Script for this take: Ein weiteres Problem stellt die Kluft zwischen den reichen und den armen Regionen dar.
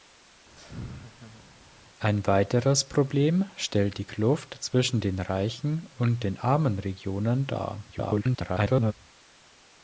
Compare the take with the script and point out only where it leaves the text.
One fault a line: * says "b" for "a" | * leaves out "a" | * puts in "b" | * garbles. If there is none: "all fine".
* garbles